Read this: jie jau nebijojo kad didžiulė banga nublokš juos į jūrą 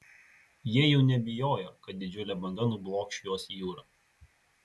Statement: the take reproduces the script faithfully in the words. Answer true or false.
true